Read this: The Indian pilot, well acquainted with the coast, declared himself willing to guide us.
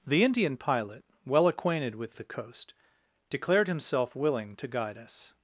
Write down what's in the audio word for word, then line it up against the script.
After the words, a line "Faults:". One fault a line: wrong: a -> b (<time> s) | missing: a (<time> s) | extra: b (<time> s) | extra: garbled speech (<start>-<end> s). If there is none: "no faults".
The Indian pilot, well acquainted with the coast, declared himself willing to guide us.
Faults:
no faults